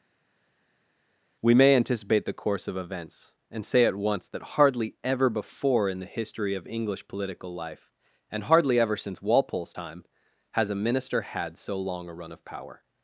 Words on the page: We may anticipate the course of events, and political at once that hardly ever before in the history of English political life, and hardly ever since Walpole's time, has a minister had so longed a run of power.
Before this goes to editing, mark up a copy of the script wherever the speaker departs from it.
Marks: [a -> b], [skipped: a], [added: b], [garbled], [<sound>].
We may anticipate the course of events, and [political -> say] at once that hardly ever before in the history of English political life, and hardly ever since Walpole's time, has a minister had so [longed -> long] a run of power.